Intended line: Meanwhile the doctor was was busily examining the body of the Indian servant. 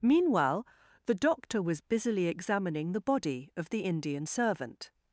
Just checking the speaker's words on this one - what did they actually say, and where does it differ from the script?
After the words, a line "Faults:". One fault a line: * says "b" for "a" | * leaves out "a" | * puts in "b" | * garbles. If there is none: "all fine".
Meanwhile the doctor was busily examining the body of the Indian servant.
Faults:
* leaves out "was"